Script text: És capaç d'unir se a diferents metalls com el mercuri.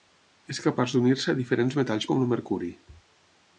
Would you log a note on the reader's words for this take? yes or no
no